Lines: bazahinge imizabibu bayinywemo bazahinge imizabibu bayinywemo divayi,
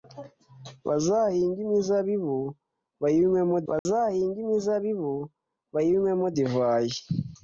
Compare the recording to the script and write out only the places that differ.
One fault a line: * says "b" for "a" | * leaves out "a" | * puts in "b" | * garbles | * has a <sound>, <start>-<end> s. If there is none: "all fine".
* has a dropout, 3.8-3.9 s